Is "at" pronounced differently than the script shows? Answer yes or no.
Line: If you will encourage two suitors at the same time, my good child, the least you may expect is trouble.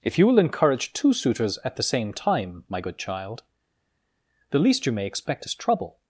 no